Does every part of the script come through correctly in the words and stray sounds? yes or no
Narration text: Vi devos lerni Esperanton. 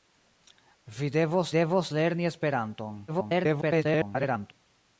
no